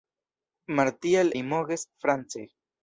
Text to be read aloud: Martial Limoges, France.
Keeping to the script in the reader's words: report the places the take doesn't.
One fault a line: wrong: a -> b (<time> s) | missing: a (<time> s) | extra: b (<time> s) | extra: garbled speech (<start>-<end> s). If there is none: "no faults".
no faults